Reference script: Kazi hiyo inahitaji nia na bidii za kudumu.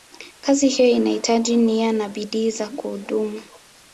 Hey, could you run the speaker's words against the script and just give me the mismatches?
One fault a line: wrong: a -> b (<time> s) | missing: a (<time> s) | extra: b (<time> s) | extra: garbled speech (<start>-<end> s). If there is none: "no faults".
no faults